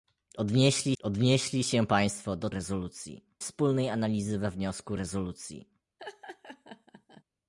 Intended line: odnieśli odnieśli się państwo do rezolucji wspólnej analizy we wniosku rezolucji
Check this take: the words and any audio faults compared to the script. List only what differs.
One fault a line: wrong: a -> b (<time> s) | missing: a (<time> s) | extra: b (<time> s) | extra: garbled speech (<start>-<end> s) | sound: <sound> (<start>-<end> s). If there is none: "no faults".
sound: laugh (6.0-7.2 s)